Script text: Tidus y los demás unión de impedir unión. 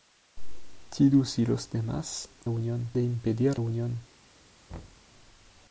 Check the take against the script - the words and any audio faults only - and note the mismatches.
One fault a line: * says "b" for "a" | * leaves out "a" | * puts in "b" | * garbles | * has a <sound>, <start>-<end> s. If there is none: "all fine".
* has a thud, 4.7-5.1 s